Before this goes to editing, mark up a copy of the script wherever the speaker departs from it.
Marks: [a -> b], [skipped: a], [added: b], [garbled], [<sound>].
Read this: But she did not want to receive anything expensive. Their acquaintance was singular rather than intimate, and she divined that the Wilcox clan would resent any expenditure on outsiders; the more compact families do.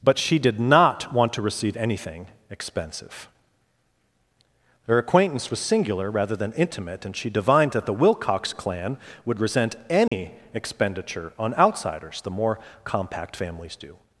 But she did not want to receive anything expensive. Their acquaintance was singular rather than intimate, and she divined that the Wilcox clan would resent any [dropout] expenditure on outsiders; the more compact families do.